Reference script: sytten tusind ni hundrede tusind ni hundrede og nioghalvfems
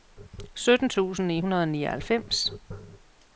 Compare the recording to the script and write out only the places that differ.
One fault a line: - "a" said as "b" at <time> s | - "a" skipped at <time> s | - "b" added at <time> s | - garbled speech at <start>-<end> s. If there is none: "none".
- "tusind ni hundrede" skipped at 1.6 s